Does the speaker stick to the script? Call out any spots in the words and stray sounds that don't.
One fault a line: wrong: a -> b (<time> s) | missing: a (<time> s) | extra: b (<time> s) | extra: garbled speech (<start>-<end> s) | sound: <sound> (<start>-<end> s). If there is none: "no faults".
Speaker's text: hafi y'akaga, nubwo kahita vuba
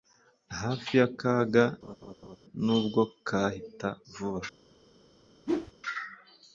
sound: laugh (1.8-2.4 s)
sound: whoosh (5.5-5.7 s)